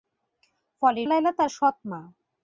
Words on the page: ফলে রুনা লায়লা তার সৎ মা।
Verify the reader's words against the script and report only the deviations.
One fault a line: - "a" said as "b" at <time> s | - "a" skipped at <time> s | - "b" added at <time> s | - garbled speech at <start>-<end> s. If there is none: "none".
- "রুনা" skipped at 1.0 s